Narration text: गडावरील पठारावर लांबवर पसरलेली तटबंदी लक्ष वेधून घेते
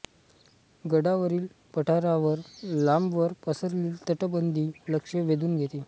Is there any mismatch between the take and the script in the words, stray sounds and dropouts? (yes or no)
no